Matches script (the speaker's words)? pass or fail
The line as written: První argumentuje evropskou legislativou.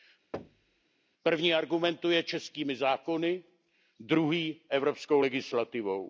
fail